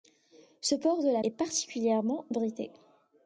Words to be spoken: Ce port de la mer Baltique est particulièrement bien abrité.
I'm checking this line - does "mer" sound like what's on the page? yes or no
no